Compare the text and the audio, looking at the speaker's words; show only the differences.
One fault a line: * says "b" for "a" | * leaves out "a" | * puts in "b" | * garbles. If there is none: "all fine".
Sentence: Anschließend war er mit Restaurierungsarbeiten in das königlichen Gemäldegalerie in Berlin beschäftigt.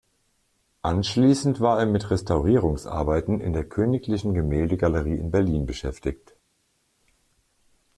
* says "der" for "das"